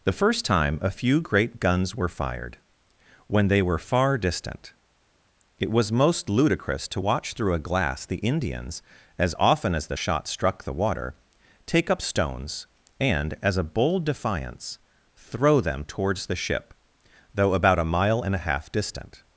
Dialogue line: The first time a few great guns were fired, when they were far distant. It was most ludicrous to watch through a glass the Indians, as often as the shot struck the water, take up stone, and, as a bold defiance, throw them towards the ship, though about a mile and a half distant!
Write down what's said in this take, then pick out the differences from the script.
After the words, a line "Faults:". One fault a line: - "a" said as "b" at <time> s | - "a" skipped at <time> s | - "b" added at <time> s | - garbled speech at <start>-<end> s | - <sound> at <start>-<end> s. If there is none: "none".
The first time a few great guns were fired, when they were far distant. It was most ludicrous to watch through a glass the Indians, as often as the shot struck the water, take up stones, and, as a bold defiance, throw them towards the ship, though about a mile and a half distant!
Faults:
- "stone" said as "stones" at 12.0 s